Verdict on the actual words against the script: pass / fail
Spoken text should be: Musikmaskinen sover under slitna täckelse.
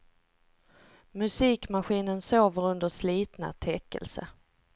pass